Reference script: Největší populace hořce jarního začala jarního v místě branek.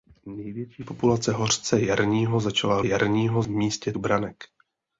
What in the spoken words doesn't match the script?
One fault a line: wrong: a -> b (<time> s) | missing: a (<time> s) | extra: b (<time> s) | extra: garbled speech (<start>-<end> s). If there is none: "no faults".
no faults